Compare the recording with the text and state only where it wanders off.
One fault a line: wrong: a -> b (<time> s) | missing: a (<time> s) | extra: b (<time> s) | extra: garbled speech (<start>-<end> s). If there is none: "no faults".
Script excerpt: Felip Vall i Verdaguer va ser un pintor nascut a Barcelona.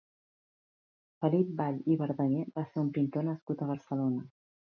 no faults